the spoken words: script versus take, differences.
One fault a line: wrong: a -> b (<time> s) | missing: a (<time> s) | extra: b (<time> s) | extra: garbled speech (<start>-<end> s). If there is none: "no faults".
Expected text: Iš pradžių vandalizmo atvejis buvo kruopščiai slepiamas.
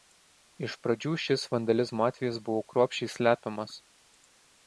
extra: šis (1.2 s)